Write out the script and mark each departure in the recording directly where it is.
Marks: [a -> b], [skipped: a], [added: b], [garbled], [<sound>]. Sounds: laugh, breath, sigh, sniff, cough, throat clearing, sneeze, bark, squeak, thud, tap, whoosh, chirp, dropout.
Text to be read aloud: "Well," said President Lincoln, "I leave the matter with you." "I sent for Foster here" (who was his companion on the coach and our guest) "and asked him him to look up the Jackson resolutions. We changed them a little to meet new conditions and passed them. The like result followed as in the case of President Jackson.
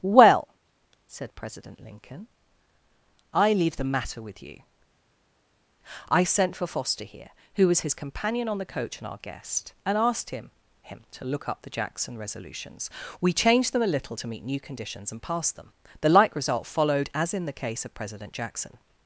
"Well," said President Lincoln, "I leave the matter with you." "I sent for Foster here" (who was his companion on the coach and our guest) "and asked him him to look up the Jackson resolutions. We changed them a little to meet new conditions and passed them. The like result followed as in the case of President Jackson.